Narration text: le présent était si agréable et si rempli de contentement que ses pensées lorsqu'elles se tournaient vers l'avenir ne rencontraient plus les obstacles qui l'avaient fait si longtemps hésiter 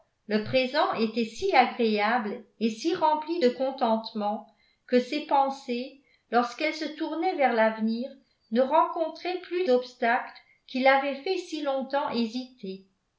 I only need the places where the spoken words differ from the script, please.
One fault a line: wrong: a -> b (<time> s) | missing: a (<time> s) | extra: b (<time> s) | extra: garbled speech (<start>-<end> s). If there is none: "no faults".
missing: les (9.7 s)